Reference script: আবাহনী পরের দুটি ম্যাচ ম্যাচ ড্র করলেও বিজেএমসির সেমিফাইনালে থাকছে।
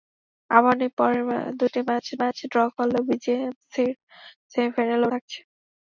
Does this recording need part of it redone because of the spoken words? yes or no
no